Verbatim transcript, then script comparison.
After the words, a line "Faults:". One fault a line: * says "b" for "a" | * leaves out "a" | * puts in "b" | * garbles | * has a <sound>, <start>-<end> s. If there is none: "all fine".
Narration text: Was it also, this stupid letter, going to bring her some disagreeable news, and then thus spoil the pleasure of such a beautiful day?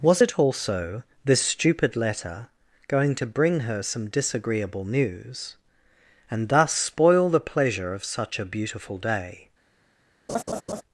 Was it also, this stupid letter, going to bring her some disagreeable news, and thus spoil the pleasure of such a beautiful day?
Faults:
* leaves out "then"
* has a laugh, 10.3-10.8 s